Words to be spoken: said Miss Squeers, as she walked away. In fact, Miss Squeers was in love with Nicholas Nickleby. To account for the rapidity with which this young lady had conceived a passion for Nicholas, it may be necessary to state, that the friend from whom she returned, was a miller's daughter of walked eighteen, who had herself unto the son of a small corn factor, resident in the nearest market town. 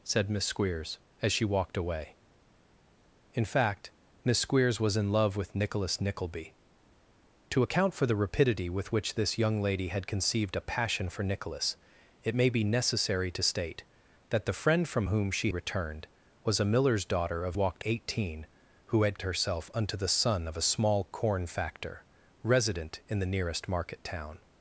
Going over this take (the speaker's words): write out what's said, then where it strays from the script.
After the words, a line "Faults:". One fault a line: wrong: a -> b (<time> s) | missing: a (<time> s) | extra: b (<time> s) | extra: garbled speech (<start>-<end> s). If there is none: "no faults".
said Miss Squeers, as she walked away. In fact, Miss Squeers was in love with Nicholas Nickleby. To account for the rapidity with which this young lady had conceived a passion for Nicholas, it may be necessary to state, that the friend from whom she returned, was a miller's daughter of walked eighteen, who had herself unto the son of a small corn factor, resident in the nearest market town.
Faults:
no faults